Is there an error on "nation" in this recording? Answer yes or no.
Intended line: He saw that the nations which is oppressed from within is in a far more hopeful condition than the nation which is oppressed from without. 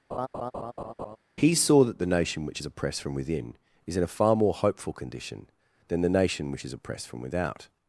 no